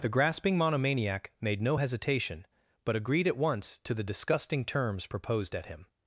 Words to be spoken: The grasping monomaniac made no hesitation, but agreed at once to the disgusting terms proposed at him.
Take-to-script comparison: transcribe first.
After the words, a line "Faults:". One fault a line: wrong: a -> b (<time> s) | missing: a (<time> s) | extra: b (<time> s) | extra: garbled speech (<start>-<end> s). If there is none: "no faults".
The grasping monomaniac made no hesitation, but agreed at once to the disgusting terms proposed at him.
Faults:
no faults